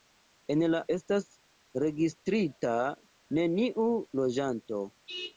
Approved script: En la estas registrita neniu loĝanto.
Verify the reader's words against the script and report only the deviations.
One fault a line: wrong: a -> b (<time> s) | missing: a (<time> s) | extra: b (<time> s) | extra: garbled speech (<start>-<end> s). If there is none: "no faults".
no faults